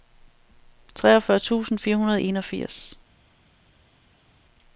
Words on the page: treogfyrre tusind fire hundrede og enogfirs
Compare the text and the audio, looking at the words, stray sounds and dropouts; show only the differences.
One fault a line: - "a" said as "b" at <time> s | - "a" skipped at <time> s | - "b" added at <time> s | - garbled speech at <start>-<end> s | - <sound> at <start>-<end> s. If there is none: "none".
none